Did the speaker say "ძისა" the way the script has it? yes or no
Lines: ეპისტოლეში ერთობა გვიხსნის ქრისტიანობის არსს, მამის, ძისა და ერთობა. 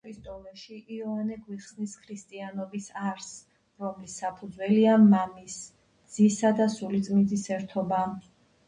yes